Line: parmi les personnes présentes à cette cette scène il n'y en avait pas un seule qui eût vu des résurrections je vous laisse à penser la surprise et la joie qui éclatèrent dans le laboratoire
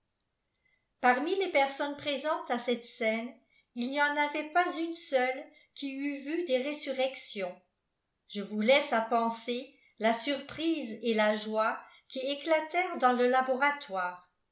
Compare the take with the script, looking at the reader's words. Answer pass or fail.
fail